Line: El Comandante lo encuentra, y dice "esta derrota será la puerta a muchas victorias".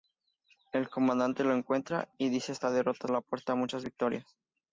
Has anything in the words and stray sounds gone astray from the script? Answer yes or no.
yes